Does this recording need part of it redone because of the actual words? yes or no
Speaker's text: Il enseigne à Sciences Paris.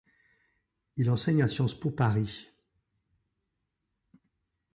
yes